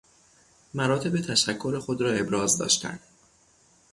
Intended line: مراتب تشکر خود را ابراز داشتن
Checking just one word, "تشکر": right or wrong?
right